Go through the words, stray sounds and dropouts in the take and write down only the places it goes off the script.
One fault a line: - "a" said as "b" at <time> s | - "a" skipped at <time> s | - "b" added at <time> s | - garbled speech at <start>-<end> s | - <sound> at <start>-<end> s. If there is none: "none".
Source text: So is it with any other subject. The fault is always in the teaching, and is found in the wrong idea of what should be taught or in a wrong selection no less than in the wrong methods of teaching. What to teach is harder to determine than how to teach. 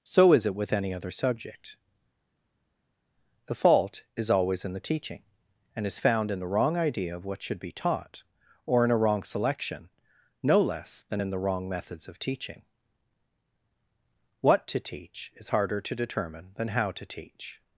none